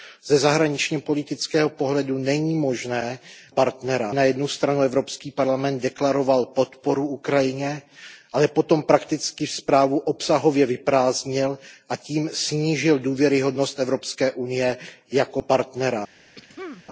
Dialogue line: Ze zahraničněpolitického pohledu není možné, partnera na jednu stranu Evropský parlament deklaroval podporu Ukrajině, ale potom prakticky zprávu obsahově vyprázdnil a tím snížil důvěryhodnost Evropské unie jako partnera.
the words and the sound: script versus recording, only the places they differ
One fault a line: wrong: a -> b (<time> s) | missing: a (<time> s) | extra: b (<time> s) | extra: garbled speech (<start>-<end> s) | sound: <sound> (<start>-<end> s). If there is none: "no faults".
sound: throat clearing (16.3-16.8 s)